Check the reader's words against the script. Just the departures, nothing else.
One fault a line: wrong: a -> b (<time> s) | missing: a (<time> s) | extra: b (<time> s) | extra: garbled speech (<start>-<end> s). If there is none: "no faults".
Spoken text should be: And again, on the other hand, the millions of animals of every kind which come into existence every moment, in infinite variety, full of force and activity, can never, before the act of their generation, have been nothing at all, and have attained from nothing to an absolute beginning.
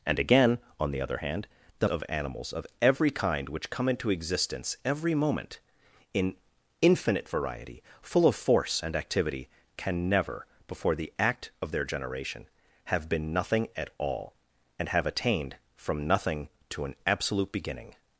missing: millions (1.9 s)